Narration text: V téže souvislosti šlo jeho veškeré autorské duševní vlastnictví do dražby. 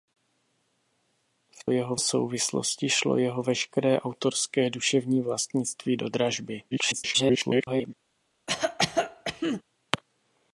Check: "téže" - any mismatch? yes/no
yes